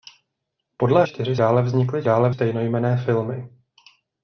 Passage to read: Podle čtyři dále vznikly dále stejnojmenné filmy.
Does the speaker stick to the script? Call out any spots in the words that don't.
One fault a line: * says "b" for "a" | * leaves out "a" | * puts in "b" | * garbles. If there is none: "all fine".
all fine